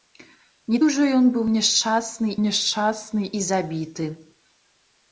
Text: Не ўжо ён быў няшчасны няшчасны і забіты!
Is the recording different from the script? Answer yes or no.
no